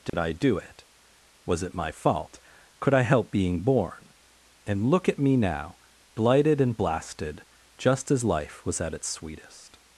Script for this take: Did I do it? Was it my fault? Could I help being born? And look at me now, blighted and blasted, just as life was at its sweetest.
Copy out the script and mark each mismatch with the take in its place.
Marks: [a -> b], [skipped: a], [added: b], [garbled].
Did I do it? Was it my fault? Could I help being born? And look at me now, blighted and blasted, just as life was at its sweetest.